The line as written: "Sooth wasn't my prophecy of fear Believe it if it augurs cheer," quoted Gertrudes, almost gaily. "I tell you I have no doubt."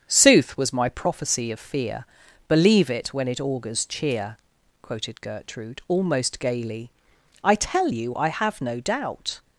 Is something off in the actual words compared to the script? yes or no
yes